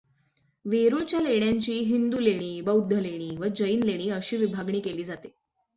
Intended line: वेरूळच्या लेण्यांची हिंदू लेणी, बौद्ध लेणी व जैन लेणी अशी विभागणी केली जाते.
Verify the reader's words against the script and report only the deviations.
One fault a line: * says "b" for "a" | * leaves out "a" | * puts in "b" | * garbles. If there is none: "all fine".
all fine